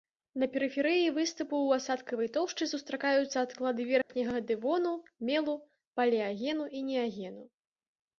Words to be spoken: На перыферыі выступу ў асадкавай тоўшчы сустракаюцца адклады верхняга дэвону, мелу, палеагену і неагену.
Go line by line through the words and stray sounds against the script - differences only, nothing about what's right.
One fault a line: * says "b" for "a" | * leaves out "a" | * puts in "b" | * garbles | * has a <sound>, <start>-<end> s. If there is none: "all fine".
* has a dropout, 4.0-4.1 s